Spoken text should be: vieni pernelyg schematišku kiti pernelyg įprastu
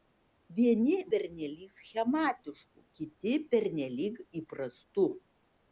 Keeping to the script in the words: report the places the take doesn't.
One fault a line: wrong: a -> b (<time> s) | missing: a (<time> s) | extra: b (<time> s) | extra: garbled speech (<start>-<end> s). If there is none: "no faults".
no faults